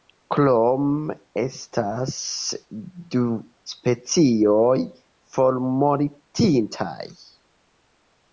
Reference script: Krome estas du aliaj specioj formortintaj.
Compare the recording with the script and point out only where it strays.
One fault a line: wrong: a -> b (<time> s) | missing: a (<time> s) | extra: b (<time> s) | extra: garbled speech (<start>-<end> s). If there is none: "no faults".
missing: aliaj (3.2 s)